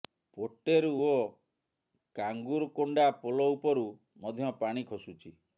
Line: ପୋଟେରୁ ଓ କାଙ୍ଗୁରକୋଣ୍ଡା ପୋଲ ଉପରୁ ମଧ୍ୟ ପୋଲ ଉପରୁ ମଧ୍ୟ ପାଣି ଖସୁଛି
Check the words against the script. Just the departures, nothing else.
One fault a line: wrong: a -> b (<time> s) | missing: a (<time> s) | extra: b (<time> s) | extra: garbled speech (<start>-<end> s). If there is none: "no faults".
missing: ପୋଲ ଉପରୁ ମଧ୍ୟ (4.6 s)